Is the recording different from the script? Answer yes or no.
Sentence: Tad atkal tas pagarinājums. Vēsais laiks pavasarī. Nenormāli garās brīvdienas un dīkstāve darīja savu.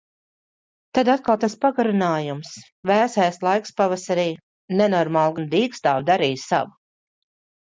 yes